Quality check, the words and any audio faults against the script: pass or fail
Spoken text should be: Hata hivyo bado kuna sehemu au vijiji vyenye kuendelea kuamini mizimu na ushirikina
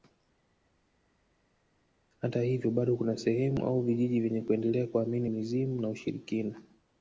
pass